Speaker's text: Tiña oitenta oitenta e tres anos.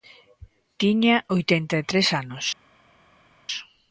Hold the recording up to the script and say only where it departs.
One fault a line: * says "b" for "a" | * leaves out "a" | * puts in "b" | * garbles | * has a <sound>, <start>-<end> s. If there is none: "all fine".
* leaves out "oitenta"